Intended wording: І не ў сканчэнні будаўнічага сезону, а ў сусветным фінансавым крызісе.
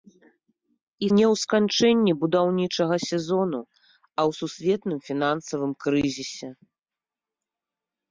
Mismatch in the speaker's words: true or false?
false